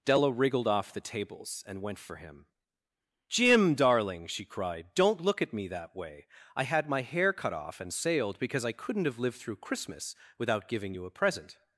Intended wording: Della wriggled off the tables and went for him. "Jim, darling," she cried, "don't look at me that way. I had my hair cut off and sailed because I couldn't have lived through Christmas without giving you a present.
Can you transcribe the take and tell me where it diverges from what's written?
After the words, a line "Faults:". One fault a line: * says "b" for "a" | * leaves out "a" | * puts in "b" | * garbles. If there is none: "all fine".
Della wriggled off the tables and went for him. "Jim, darling," she cried, "don't look at me that way. I had my hair cut off and sailed because I couldn't have lived through Christmas without giving you a present.
Faults:
all fine